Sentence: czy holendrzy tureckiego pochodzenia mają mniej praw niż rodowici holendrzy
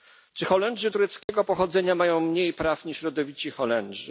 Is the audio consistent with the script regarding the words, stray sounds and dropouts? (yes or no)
no